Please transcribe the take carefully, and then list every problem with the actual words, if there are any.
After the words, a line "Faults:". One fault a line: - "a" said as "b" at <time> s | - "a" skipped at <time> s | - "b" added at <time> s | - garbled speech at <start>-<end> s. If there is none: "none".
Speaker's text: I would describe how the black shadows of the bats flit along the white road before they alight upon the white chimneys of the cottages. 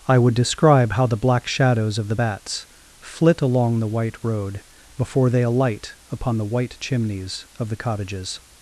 I would describe how the black shadows of the bats flit along the white road before they alight upon the white chimneys of the cottages.
Faults:
none